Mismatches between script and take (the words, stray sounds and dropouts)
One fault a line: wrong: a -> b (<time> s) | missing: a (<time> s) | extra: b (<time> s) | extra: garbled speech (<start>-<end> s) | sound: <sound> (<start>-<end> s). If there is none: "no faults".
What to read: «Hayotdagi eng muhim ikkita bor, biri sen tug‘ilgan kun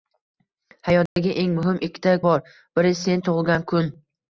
sound: dropout (1.1-1.2 s)